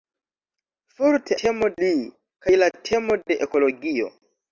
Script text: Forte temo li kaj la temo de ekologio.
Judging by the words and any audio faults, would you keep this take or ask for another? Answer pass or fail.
pass